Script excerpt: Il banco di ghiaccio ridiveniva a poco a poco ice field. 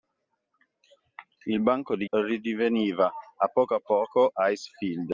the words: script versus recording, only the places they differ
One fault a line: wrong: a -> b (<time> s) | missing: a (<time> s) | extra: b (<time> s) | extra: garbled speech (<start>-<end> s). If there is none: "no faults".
missing: ghiaccio (2.1 s)